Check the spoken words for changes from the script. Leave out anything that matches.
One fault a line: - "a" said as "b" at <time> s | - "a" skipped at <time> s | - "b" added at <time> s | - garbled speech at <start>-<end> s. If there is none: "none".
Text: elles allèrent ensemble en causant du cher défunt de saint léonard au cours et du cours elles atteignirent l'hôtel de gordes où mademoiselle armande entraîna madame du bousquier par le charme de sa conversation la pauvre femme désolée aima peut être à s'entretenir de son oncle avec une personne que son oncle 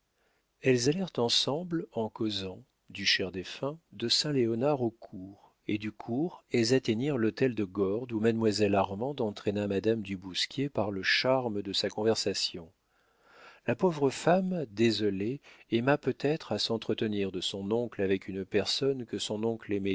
none